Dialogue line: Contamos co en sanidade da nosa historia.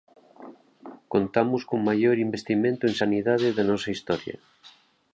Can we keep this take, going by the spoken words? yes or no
no